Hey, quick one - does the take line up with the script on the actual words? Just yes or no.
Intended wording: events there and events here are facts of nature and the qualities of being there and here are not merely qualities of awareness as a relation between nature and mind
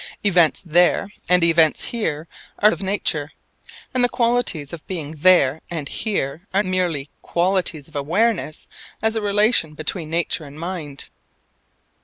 no